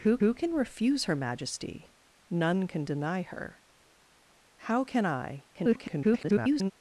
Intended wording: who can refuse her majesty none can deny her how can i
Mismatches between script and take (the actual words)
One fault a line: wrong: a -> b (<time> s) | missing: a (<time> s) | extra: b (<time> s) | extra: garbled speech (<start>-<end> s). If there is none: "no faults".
extra: who (0.2 s)
extra: garbled speech (5.5-6.7 s)